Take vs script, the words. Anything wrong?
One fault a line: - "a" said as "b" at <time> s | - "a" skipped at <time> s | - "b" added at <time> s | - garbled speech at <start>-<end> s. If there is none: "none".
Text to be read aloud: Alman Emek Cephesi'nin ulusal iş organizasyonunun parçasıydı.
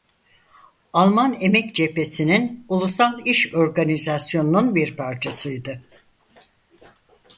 - "bir" added at 4.7 s